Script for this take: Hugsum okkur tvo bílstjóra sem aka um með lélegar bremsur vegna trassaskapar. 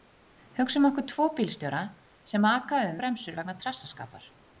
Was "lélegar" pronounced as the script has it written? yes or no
no